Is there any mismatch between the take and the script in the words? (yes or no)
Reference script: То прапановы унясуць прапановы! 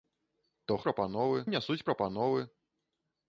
no